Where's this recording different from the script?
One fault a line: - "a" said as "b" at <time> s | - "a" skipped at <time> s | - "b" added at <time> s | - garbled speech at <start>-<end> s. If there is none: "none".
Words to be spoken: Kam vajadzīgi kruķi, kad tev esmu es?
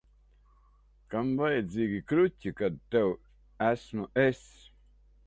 none